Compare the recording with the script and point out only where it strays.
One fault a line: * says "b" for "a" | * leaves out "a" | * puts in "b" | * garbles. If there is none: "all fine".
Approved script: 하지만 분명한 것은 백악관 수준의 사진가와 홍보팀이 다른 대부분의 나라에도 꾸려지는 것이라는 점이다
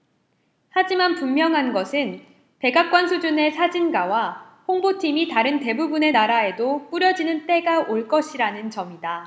* puts in "때가 올"